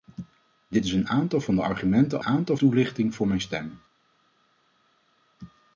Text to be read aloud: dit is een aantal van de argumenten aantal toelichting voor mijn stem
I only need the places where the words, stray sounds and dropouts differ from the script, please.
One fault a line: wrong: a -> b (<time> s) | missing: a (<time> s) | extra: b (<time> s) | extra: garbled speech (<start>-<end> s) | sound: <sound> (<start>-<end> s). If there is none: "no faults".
no faults